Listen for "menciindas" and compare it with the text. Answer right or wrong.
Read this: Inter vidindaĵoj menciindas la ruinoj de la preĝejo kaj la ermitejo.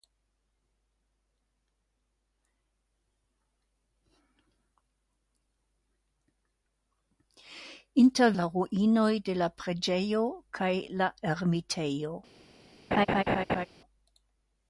wrong